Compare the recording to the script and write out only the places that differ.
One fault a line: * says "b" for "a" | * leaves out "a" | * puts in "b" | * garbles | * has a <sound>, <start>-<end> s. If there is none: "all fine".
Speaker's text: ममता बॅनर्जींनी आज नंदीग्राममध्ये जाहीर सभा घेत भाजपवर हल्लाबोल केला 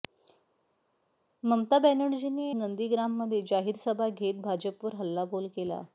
* leaves out "आज"